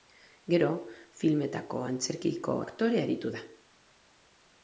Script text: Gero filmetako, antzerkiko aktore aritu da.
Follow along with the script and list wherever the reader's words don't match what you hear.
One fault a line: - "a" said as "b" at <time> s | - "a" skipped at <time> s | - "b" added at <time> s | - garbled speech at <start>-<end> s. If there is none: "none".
none